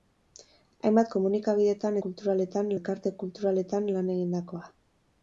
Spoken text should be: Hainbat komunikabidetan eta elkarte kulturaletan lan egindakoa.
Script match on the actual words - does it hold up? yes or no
no